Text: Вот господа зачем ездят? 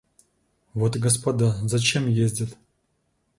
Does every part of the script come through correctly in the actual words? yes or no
yes